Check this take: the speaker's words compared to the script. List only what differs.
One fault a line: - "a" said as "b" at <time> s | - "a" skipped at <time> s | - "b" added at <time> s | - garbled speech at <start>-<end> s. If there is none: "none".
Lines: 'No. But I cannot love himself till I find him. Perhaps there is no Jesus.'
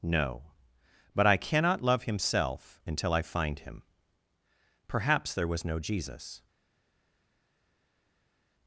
- "till" said as "until" at 2.9 s
- "is" said as "was" at 5.5 s